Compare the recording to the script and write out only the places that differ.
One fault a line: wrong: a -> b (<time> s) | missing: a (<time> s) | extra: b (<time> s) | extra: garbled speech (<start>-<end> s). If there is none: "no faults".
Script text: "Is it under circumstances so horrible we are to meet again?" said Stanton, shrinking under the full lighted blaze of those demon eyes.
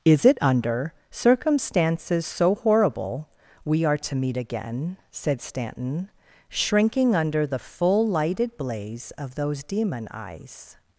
no faults